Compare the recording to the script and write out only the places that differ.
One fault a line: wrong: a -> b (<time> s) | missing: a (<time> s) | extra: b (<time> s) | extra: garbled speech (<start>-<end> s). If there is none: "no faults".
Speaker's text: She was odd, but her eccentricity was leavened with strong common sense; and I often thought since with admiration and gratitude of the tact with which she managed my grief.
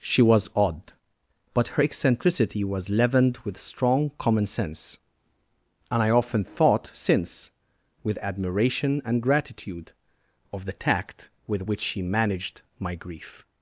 no faults